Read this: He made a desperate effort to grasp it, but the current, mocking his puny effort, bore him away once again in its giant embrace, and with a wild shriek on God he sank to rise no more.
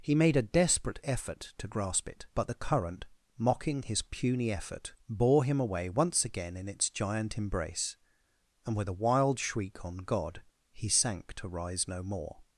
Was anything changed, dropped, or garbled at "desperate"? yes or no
no